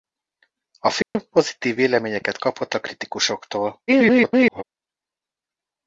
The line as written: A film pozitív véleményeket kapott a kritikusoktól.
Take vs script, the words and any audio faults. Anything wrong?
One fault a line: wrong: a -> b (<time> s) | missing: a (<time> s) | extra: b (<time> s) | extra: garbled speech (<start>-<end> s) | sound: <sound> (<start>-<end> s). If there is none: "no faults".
sound: dropout (1.0-1.2 s)
extra: garbled speech (3.9-4.6 s)